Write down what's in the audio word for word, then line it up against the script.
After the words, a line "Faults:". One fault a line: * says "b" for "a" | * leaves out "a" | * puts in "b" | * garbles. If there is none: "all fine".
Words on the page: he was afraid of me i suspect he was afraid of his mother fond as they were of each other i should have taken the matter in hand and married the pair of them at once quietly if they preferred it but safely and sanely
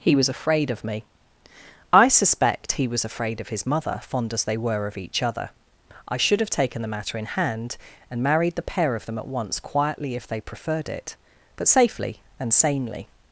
he was afraid of me i suspect he was afraid of his mother fond as they were of each other i should have taken the matter in hand and married the pair of them at once quietly if they preferred it but safely and sanely
Faults:
all fine